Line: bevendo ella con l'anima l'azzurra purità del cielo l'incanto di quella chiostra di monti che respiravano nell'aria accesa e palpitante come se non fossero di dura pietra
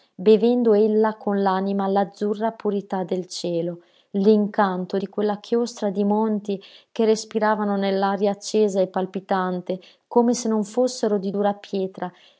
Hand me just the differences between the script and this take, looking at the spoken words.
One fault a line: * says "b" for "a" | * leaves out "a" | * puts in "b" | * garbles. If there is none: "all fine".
all fine